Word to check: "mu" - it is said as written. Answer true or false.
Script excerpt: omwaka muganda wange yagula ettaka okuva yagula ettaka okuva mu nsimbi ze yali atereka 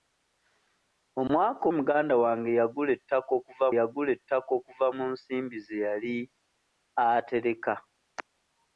true